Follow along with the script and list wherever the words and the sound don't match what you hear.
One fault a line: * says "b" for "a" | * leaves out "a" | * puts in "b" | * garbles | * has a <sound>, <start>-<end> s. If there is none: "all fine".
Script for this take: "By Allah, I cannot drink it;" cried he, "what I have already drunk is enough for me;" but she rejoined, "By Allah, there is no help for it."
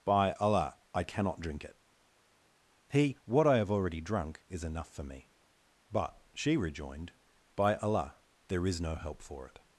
* leaves out "cried"